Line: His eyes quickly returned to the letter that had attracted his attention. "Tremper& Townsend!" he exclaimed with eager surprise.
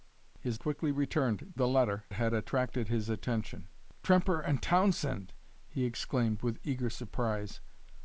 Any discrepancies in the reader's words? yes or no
yes